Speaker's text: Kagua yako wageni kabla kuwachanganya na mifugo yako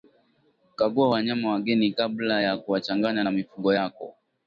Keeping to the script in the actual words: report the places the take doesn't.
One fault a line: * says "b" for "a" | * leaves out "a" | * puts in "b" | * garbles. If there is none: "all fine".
* says "wanyama" for "yako"
* puts in "ya"